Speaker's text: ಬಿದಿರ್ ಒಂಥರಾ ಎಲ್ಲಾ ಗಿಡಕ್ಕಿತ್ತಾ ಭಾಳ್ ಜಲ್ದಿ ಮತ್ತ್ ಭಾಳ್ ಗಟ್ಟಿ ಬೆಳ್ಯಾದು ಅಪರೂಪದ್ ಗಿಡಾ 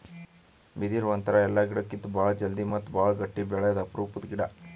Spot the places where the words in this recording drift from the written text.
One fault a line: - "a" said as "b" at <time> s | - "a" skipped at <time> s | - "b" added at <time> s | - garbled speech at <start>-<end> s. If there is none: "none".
none